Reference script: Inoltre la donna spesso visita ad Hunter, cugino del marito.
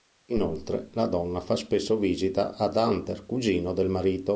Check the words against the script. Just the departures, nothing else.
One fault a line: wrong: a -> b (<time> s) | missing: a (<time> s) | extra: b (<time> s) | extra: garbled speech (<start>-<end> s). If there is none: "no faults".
extra: fa (1.4 s)